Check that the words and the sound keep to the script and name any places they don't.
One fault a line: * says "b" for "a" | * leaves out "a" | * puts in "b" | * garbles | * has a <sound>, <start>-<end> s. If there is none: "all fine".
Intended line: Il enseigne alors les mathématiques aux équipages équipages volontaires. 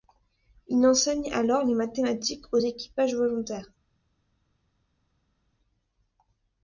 * leaves out "équipages"